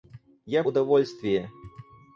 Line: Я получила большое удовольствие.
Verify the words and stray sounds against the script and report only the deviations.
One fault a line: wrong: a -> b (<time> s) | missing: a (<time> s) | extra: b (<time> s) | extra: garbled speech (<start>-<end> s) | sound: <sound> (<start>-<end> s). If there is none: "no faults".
missing: получила большое (0.6 s)